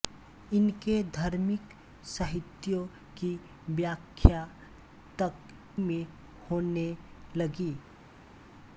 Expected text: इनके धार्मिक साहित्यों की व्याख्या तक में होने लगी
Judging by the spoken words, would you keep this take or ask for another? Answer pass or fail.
pass